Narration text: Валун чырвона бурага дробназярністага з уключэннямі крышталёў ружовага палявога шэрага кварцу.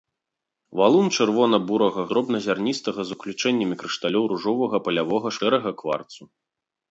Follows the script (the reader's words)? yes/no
yes